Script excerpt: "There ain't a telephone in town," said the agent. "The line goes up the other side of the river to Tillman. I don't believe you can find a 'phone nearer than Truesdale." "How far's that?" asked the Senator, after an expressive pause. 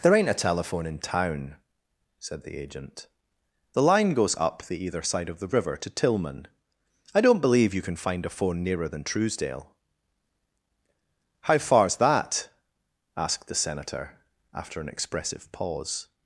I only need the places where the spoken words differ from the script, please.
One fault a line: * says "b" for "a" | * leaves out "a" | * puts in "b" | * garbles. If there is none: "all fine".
* says "either" for "other"